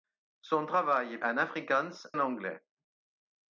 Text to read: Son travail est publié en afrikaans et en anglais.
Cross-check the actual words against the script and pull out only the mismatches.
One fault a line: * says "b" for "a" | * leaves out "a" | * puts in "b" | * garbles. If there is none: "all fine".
* leaves out "publié"
* leaves out "et"